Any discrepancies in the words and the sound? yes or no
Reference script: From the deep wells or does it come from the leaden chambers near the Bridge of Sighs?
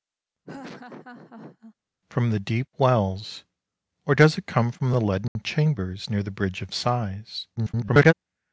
yes